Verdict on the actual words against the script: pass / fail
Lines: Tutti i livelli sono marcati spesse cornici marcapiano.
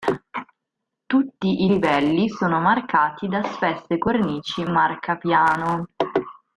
fail